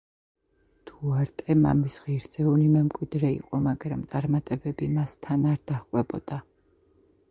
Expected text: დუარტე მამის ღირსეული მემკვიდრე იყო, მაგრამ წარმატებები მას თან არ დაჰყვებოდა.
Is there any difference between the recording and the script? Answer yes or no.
no